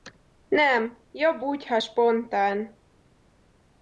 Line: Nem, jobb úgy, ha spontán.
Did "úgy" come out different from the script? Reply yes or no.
no